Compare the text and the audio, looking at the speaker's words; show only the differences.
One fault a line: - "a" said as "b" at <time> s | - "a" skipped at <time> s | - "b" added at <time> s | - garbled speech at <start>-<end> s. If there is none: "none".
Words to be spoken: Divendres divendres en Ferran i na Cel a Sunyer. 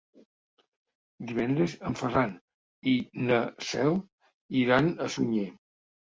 - "divendres" skipped at 1.8 s
- "iran" added at 4.6 s